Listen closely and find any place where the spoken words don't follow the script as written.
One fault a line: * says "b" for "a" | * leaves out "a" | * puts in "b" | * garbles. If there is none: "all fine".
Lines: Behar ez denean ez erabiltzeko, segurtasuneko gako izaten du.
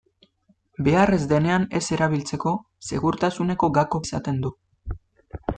all fine